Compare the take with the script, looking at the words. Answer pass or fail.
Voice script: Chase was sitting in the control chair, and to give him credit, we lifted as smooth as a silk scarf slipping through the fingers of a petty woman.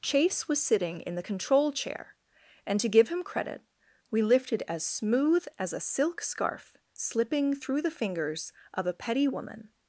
pass